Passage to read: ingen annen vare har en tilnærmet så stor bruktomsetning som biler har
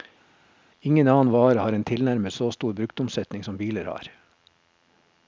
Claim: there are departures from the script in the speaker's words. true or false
false